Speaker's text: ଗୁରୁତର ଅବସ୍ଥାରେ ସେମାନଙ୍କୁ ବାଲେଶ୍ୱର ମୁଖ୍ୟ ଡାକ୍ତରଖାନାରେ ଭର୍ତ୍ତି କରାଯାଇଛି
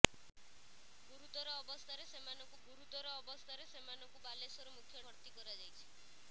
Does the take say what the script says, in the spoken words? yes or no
no